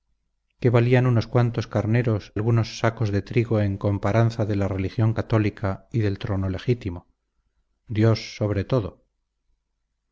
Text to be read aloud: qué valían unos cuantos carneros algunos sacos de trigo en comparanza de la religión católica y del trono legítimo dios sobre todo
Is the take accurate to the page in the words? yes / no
yes